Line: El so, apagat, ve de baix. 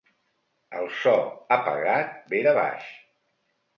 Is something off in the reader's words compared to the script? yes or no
no